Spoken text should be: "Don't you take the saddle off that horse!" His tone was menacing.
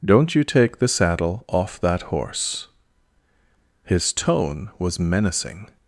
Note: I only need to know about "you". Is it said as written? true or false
true